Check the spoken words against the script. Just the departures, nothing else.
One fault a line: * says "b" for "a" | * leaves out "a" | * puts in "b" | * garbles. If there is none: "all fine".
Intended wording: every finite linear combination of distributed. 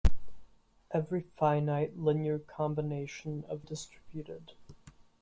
all fine